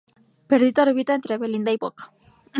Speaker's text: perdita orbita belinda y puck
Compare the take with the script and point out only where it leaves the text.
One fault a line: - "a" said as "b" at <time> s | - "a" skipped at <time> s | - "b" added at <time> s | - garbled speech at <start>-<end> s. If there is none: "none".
- "entre" added at 1.1 s